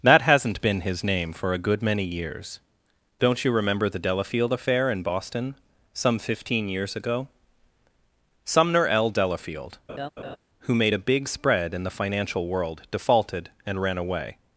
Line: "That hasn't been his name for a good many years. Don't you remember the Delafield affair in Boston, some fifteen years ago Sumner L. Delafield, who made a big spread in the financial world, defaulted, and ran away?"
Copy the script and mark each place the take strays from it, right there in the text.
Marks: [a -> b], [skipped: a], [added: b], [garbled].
"That hasn't been his name for a good many years. Don't you remember the Delafield affair in Boston, some fifteen years ago Sumner L. Delafield, who made a big spread in the financial world, defaulted, and ran away?"